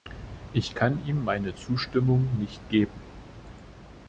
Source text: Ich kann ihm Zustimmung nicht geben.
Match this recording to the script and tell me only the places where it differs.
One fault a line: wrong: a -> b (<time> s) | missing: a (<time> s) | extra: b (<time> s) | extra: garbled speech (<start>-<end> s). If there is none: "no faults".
extra: meine (1.2 s)